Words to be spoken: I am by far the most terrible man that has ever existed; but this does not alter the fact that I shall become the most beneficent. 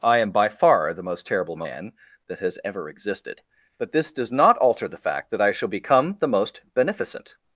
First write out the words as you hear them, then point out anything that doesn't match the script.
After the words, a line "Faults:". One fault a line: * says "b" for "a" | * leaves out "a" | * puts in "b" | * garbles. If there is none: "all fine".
I am by far the most terrible man that has ever existed; but this does not alter the fact that I shall become the most beneficent.
Faults:
all fine